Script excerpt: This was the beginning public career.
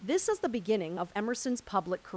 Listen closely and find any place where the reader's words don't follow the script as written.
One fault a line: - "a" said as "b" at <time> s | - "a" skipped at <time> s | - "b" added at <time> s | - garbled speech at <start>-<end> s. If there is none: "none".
- "was" said as "is" at 0.3 s
- "of Emerson's" added at 1.0 s